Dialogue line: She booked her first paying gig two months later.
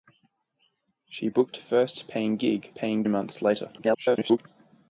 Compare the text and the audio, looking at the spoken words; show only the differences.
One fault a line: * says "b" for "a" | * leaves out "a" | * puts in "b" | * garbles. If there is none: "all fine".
* leaves out "her"
* says "paying" for "two"
* garbles